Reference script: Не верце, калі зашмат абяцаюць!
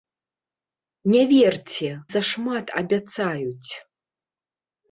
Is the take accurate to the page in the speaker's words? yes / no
no